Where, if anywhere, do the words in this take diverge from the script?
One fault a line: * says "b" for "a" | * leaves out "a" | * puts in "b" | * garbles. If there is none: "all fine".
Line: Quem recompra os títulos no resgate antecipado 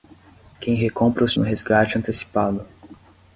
* leaves out "títulos"